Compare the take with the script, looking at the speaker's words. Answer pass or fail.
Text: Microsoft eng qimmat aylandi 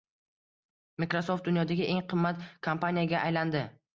fail